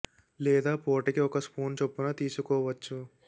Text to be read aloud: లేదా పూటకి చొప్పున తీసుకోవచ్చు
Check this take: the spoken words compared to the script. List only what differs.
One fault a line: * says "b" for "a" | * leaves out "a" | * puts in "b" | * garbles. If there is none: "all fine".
* puts in "ఒక స్పూన్"